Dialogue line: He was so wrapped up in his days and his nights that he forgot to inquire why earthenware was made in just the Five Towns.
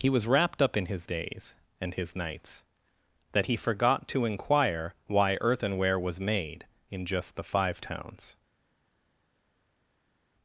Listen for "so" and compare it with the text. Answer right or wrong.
wrong